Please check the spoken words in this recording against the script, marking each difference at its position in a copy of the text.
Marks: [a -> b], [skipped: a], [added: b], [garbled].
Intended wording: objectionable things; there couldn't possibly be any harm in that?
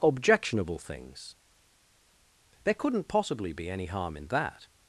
objectionable things; there couldn't possibly be any harm in that?